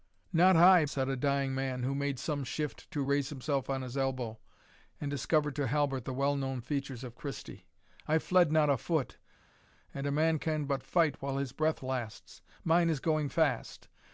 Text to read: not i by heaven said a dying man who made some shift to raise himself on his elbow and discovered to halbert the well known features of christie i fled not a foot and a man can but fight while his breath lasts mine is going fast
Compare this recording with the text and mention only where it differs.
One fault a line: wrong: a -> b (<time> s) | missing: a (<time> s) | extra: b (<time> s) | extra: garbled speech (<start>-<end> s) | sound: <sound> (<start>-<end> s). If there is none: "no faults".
missing: by heaven (0.8 s)